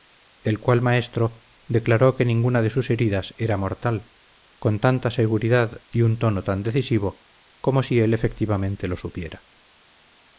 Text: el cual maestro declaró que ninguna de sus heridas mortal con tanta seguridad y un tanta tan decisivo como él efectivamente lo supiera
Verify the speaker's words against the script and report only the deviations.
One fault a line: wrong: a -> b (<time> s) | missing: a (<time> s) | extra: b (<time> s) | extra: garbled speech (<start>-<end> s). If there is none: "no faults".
extra: era (3.4 s)
wrong: tanta -> tono (6.2 s)
extra: si (7.8 s)